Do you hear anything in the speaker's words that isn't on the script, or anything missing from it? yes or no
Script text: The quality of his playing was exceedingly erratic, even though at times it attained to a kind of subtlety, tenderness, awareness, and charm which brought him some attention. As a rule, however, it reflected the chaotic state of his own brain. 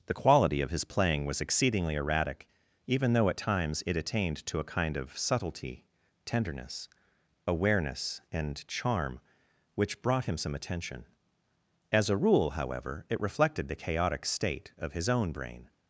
no